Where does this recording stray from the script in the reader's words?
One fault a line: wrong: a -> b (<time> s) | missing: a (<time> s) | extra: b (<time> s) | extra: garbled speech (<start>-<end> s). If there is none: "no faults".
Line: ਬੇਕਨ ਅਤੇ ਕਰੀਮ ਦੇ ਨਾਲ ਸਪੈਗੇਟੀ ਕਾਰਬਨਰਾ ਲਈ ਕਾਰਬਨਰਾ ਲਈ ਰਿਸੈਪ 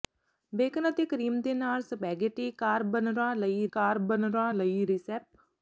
no faults